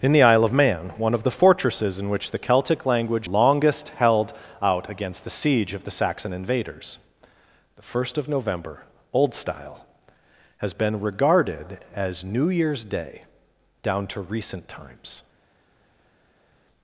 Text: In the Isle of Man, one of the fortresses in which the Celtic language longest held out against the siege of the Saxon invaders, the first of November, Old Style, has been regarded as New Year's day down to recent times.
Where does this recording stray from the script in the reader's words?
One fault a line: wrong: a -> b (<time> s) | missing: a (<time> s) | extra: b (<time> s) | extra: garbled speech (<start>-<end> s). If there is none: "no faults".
no faults